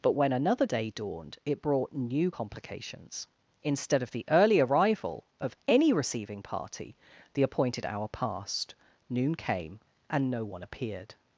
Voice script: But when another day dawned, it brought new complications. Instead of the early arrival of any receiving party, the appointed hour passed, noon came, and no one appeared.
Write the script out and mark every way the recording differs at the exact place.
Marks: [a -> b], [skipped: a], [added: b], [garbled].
But when another day dawned, it brought new complications. Instead of the early arrival of any receiving party, the appointed hour passed, noon came, and no one appeared.